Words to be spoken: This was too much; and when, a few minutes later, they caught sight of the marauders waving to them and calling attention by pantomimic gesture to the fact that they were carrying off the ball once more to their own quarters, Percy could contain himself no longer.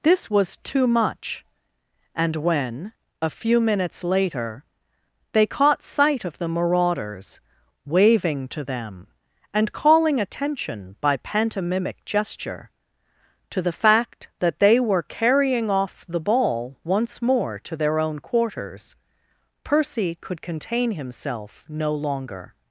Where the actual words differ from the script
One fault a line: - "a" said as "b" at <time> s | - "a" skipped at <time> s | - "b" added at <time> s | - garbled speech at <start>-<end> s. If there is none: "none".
none